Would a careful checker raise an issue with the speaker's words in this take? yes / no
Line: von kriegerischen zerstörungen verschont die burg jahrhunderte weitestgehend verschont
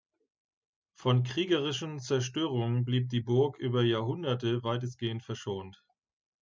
yes